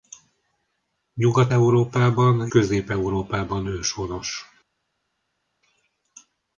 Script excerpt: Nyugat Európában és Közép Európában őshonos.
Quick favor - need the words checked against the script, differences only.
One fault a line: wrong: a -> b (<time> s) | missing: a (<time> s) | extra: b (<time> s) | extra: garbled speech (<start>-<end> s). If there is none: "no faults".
missing: és (2.5 s)